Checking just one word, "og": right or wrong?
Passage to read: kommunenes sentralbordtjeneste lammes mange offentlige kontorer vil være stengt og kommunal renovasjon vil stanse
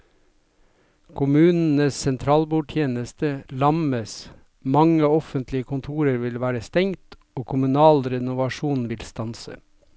right